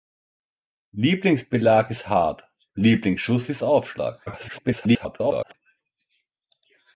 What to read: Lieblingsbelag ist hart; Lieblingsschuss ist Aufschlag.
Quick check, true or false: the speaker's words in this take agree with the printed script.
false